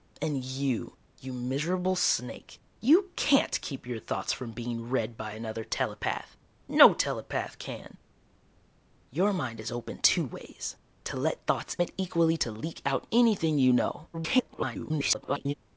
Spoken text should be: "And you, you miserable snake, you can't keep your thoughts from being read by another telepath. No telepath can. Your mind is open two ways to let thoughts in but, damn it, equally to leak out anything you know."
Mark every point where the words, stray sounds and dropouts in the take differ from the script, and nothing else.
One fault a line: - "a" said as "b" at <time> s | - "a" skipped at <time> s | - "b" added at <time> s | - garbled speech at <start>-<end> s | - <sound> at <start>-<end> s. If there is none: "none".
- "in but damn" skipped at 11.8 s
- garbled speech at 14.1-15.5 s